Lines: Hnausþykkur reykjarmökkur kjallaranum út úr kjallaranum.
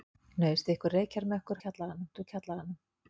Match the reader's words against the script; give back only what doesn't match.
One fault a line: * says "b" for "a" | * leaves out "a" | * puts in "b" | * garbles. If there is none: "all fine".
all fine